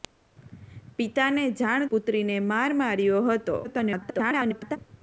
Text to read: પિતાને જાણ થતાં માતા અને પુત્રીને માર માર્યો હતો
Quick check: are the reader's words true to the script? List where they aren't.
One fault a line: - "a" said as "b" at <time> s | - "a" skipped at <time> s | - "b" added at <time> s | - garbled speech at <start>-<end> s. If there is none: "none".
- "થતાં માતા અને" skipped at 1.9 s
- garbled speech at 3.6-4.8 s